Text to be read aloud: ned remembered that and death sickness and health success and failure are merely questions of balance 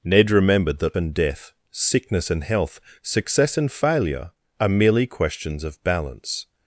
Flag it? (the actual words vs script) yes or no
no